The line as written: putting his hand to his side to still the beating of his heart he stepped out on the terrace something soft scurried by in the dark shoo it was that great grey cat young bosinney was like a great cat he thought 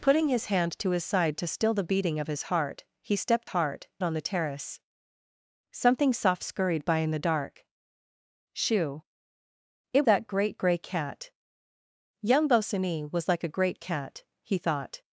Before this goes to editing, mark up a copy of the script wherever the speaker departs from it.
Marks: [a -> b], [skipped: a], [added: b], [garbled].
putting his hand to his side to still the beating of his heart he stepped [out -> heart] on the terrace something soft scurried by in the dark shoo it [skipped: was] that great grey cat young bosinney was like a great cat he thought